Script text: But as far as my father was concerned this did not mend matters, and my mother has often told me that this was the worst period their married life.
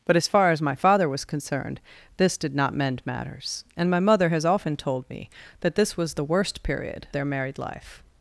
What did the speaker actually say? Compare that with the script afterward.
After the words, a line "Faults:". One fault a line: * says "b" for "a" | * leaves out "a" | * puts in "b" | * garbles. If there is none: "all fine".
But as far as my father was concerned this did not mend matters, and my mother has often told me that this was the worst period their married life.
Faults:
all fine